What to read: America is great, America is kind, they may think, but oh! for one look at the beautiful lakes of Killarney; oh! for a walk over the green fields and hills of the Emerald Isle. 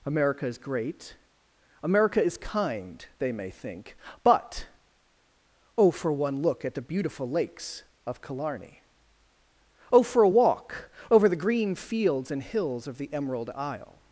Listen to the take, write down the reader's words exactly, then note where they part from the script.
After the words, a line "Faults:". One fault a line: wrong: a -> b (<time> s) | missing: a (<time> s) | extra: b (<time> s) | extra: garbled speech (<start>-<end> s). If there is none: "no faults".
America is great, America is kind, they may think, but oh! for one look at the beautiful lakes of Killarney; oh! for a walk over the green fields and hills of the Emerald Isle.
Faults:
no faults